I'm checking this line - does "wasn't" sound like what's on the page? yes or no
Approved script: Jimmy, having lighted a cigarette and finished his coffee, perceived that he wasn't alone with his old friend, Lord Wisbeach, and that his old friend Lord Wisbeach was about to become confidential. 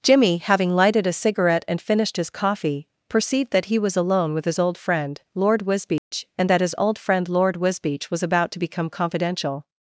no